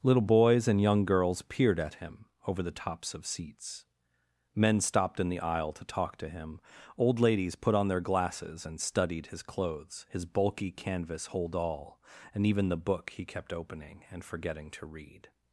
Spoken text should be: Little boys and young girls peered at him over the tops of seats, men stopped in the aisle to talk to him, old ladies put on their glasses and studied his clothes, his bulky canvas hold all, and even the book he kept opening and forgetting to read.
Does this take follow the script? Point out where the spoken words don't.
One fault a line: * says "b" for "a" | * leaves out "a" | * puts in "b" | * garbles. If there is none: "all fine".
all fine